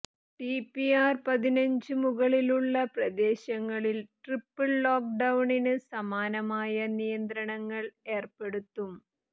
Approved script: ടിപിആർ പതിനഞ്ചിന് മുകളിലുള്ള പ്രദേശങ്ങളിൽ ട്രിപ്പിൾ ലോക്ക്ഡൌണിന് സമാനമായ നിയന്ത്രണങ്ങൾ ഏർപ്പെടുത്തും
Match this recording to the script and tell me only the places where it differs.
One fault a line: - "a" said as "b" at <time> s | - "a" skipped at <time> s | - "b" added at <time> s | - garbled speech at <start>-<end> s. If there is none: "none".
none